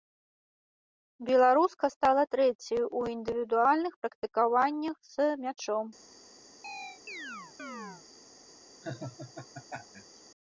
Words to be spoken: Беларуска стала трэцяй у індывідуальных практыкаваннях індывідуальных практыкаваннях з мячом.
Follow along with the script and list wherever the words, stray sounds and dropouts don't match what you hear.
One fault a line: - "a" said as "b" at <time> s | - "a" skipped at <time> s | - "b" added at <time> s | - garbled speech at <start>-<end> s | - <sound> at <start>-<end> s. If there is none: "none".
- "індывідуальных практыкаваннях" skipped at 5.0 s
- chirp at 6.6-8.0 s
- laugh at 8.8-10.2 s